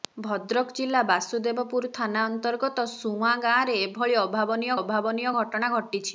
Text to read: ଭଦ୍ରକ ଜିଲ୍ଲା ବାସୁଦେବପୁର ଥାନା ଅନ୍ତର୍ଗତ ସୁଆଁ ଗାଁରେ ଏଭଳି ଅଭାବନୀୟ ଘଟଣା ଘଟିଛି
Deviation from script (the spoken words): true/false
true